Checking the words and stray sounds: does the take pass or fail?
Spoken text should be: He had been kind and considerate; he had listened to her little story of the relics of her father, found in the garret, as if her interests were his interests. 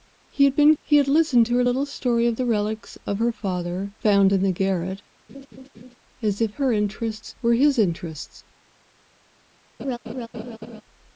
fail